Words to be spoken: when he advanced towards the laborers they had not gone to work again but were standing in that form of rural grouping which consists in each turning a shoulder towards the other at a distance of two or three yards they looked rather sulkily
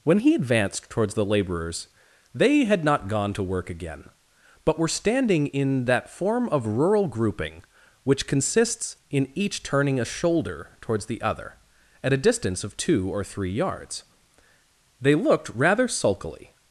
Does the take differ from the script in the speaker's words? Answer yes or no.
no